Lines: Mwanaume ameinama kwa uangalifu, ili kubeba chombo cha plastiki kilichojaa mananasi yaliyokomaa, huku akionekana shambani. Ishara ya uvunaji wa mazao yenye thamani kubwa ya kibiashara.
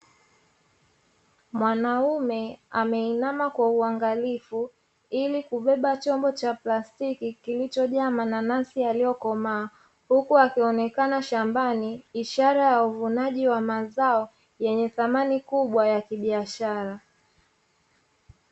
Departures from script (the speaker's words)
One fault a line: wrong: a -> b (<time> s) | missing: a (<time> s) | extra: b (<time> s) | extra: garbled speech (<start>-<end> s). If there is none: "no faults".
no faults